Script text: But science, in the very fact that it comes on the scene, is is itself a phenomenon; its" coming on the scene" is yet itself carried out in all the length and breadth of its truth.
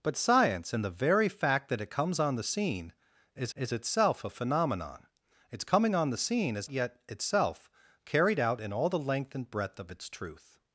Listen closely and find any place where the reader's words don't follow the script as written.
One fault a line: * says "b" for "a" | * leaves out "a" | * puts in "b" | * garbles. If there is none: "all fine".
all fine